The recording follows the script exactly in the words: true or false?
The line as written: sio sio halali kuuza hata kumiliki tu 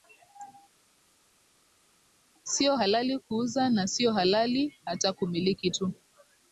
false